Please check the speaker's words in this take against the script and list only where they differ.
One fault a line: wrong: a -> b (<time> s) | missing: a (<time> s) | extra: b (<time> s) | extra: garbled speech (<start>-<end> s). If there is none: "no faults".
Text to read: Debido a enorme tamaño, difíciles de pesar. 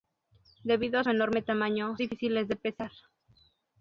no faults